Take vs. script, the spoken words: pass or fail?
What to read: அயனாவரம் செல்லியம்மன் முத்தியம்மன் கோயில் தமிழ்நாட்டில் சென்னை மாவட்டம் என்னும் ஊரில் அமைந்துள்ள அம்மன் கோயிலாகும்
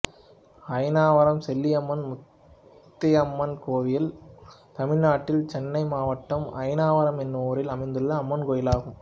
fail